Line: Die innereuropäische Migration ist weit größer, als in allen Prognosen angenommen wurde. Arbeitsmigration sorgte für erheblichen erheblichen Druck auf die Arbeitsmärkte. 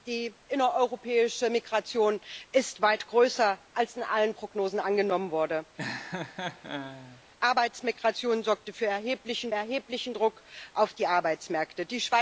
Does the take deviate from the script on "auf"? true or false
false